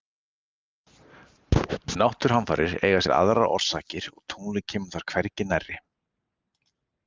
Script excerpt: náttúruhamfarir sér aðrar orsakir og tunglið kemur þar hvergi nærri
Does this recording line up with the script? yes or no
no